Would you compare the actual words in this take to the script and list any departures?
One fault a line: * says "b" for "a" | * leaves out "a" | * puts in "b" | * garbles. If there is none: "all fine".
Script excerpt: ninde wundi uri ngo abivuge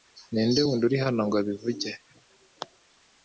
* puts in "hano"